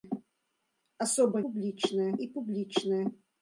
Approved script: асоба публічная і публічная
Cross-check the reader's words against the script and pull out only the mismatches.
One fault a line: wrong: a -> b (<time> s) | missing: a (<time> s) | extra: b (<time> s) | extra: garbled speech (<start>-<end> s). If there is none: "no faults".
no faults